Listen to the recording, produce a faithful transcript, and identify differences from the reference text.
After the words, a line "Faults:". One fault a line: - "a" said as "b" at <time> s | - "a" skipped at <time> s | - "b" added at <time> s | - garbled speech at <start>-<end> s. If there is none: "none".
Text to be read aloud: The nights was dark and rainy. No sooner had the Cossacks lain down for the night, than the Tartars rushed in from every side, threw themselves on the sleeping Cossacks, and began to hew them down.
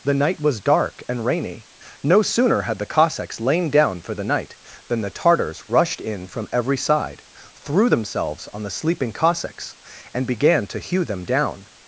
The night was dark and rainy. No sooner had the Cossacks lain down for the night, than the Tartars rushed in from every side, threw themselves on the sleeping Cossacks, and began to hew them down.
Faults:
- "nights" said as "night" at 0.1 s